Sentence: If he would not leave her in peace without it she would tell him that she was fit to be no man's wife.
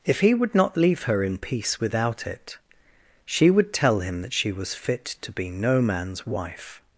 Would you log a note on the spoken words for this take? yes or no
no